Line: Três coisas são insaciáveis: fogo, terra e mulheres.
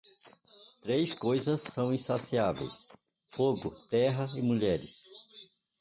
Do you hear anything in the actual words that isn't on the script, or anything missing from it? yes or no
no